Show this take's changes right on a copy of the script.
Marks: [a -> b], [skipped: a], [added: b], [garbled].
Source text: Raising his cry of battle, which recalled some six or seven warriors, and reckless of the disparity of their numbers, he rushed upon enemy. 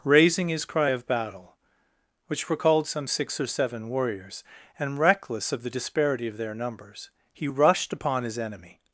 Raising his cry of battle, which recalled some six or seven warriors, and reckless of the disparity of their numbers, he rushed upon [added: his] enemy.